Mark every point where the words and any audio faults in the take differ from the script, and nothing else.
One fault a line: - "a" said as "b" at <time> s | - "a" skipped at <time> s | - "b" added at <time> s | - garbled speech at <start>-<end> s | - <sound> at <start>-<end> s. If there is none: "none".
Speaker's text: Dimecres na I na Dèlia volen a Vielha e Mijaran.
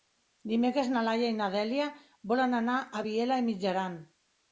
- "Laia" added at 1.1 s
- "anar" added at 2.6 s